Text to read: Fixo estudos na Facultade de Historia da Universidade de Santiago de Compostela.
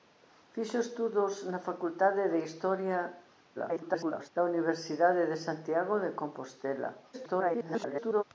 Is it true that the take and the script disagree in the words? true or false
true